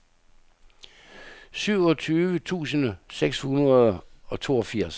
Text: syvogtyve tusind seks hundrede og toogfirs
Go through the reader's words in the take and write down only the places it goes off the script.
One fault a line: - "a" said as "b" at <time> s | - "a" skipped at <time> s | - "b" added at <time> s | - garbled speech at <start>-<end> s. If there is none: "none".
none